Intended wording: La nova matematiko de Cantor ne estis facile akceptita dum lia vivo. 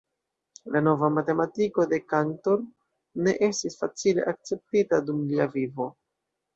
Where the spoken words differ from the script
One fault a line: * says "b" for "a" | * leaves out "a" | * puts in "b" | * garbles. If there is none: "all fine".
all fine